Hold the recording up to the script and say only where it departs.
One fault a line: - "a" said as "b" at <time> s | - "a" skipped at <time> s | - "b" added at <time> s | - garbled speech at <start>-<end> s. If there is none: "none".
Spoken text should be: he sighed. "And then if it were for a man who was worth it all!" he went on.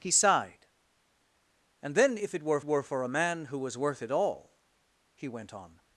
- "were" added at 2.6 s